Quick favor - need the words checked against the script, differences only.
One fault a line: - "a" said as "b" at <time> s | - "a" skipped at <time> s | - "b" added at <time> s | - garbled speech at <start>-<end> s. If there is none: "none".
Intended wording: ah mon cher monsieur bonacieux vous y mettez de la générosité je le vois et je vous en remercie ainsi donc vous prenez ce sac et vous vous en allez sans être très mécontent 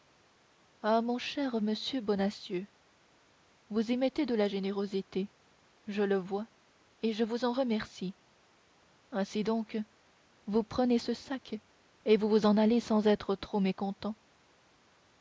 - "très" said as "trop" at 13.3 s